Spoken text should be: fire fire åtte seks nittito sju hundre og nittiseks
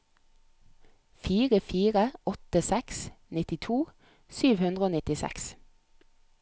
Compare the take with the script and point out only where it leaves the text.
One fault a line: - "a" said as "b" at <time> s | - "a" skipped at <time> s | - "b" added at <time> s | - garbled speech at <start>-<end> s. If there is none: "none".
none